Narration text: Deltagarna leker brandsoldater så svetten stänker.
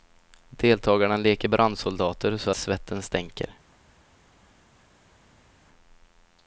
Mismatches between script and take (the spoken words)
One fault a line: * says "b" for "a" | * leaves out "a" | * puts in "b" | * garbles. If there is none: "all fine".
all fine